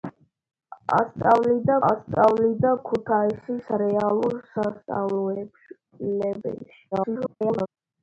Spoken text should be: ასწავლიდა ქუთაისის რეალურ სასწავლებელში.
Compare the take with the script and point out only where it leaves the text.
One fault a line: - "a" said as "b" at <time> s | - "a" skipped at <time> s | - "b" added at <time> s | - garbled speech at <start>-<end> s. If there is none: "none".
- "ასწავლიდა" added at 1.9 s
- garbled speech at 6.9-7.7 s